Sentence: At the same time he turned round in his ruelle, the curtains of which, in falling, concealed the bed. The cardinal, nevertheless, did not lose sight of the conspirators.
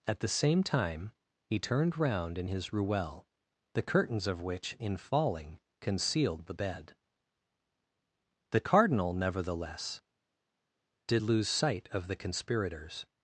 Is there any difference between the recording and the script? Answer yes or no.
yes